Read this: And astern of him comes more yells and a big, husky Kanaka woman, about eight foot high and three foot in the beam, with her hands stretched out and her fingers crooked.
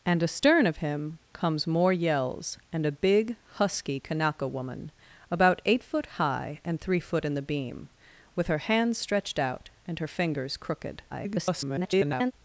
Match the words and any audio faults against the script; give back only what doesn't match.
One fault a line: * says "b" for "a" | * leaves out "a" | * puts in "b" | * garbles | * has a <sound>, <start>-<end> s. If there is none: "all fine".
* garbles